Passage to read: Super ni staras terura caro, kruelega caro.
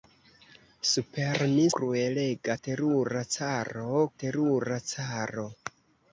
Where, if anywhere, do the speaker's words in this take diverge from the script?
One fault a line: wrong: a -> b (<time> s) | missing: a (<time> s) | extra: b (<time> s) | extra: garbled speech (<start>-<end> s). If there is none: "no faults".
wrong: staras -> kruelega (1.8 s)
wrong: kruelega -> terura (4.2 s)